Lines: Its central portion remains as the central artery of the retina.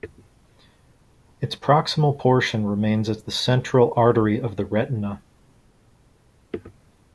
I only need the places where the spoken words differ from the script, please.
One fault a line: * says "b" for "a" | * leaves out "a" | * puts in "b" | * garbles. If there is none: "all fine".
* says "proximal" for "central"